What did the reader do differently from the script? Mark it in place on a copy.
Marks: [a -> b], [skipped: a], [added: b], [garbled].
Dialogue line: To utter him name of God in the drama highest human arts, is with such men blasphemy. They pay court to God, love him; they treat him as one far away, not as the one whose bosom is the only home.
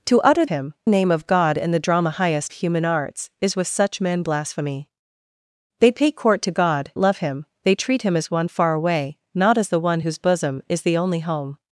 To utter him name of God in the drama highest human arts, is with such men blasphemy. They pay court to God, love him; they treat him as one far away, not as the one whose bosom is the only home.